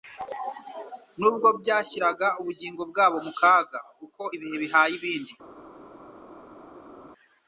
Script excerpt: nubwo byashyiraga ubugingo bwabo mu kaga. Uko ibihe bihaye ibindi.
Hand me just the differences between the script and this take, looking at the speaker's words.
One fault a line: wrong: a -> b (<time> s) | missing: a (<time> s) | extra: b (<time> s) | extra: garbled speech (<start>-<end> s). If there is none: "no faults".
no faults